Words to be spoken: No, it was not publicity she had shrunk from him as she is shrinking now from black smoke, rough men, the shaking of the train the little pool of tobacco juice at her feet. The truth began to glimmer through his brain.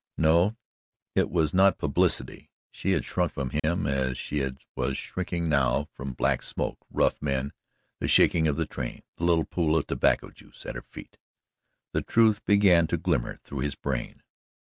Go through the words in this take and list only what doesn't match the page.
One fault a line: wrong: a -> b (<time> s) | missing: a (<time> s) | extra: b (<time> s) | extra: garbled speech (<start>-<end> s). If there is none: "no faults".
wrong: is -> was (4.8 s)